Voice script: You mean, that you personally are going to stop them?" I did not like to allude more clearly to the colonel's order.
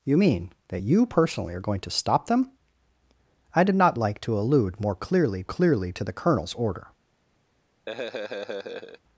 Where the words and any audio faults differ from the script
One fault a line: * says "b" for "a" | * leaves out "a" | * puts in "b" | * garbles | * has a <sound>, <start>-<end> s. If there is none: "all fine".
* puts in "clearly"
* has a laugh, 7.9-9.0 s